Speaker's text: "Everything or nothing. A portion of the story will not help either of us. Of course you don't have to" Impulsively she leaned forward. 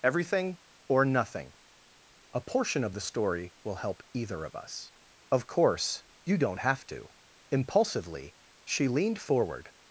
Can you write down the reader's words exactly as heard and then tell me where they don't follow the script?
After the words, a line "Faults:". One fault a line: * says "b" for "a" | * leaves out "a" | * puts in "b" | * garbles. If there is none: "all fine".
"Everything or nothing. A portion of the story will help either of us. Of course you don't have to" Impulsively she leaned forward.
Faults:
* leaves out "not"